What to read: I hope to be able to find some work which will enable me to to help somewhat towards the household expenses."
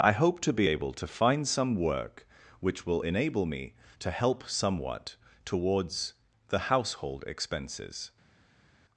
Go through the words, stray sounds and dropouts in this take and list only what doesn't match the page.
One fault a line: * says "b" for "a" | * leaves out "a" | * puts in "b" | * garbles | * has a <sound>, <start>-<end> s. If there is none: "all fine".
* leaves out "to"